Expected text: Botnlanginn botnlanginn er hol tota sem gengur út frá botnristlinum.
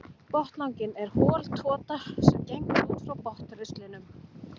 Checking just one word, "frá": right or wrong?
right